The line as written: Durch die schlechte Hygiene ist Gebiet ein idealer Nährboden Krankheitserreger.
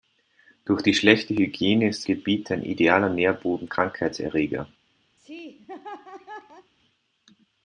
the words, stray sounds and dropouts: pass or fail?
fail